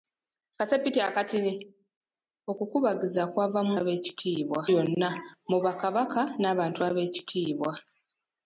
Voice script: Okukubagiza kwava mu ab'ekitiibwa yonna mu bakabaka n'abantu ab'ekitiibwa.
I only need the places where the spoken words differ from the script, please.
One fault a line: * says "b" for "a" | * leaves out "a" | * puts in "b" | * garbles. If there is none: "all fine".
all fine